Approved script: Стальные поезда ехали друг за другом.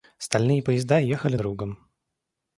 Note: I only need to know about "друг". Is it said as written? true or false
false